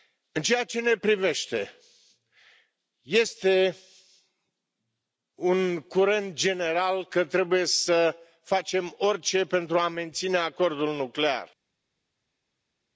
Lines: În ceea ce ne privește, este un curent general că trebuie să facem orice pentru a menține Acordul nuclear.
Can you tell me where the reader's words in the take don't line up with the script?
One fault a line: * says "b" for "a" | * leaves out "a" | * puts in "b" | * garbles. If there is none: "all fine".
all fine